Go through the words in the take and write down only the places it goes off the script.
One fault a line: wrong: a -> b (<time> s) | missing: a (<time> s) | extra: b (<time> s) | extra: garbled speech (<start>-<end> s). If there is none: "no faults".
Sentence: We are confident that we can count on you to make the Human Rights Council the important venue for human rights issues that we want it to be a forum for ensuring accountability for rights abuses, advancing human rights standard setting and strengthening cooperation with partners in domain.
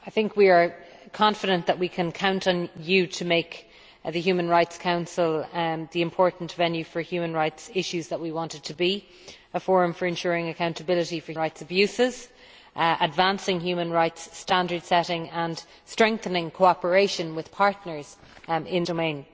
no faults